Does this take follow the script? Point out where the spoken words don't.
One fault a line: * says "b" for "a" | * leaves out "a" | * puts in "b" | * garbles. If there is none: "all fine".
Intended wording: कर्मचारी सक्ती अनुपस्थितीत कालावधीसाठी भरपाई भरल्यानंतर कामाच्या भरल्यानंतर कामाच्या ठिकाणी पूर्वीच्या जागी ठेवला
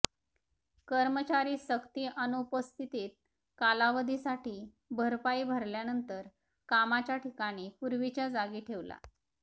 * leaves out "भरल्यानंतर कामाच्या"